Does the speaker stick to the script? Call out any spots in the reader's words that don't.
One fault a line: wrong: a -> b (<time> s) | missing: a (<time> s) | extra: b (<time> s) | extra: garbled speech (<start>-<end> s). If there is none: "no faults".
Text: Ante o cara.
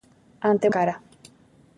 no faults